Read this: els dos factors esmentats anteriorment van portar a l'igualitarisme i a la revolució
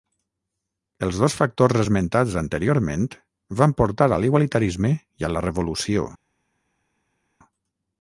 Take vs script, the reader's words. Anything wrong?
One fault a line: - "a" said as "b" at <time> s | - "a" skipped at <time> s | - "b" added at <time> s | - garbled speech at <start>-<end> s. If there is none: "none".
none